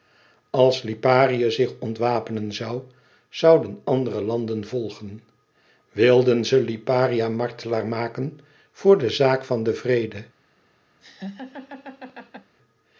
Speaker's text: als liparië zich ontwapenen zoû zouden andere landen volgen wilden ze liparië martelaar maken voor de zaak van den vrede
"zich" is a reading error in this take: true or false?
false